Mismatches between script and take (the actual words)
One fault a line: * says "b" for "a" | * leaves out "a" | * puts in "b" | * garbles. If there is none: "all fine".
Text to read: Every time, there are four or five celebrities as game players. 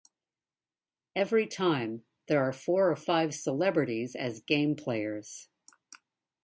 all fine